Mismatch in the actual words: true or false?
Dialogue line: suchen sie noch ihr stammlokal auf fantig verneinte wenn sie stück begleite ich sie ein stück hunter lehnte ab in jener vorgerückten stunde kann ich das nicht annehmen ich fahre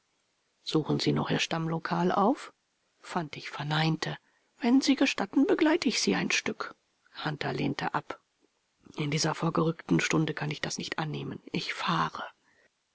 true